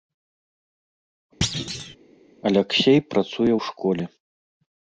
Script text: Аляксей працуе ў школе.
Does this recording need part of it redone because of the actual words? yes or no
no